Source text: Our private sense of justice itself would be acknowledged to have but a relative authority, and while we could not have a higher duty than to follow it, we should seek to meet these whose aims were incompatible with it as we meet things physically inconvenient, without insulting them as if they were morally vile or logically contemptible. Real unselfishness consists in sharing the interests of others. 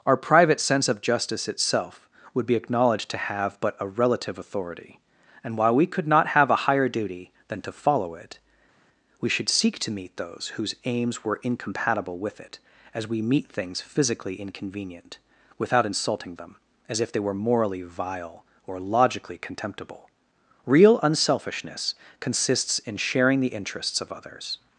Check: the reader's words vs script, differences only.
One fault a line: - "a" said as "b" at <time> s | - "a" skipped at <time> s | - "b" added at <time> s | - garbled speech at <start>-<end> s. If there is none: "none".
- "these" said as "those" at 10.2 s